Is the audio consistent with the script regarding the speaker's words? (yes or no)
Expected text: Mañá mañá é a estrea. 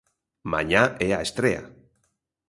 no